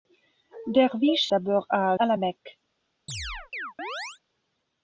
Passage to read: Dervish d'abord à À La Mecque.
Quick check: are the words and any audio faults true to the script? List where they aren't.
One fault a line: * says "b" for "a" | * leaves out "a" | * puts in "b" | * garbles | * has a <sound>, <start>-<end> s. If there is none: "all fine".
* has a chirp, 3.1-4.2 s